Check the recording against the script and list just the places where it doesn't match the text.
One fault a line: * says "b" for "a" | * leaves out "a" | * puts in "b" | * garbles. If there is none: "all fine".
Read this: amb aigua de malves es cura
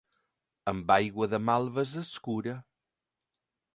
all fine